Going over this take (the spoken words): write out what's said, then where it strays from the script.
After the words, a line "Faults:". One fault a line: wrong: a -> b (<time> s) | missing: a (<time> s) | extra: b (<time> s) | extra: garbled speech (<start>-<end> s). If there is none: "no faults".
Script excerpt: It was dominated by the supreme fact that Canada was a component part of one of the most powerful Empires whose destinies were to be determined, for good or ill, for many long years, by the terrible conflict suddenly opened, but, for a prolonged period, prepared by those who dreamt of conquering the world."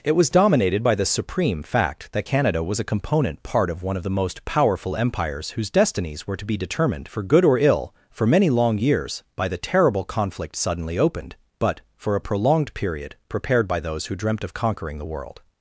It was dominated by the supreme fact that Canada was a component part of one of the most powerful Empires whose destinies were to be determined, for good or ill, for many long years, by the terrible conflict suddenly opened, but, for a prolonged period, prepared by those who dreamt of conquering the world."
Faults:
no faults